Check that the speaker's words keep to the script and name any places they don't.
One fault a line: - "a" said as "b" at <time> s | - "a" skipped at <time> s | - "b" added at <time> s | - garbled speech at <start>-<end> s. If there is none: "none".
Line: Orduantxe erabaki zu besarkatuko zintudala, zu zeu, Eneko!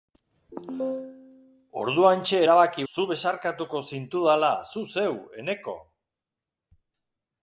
none